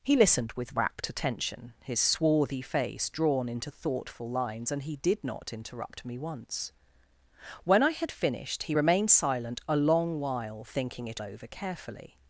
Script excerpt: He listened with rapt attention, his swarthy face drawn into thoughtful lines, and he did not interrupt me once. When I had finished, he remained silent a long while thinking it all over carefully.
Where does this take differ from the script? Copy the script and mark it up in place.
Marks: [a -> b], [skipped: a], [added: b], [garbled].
He listened with rapt attention, his swarthy face drawn into thoughtful lines, and he did not interrupt me once. When I had finished, he remained silent a long while thinking it [skipped: all] over carefully.